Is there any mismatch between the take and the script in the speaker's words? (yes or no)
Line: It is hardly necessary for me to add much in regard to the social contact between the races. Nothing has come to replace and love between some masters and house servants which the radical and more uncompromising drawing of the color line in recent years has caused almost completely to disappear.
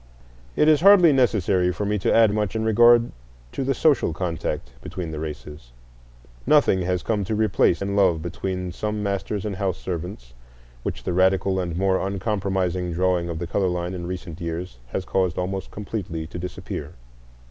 no